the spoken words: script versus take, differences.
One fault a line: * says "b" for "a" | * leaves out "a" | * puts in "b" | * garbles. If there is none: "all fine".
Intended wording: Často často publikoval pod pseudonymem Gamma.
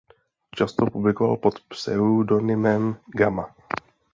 * leaves out "často"